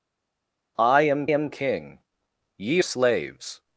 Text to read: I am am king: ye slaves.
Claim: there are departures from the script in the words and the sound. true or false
false